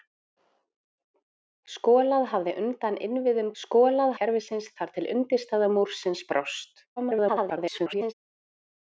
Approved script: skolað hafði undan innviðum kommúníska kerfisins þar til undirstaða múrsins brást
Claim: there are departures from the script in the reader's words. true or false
true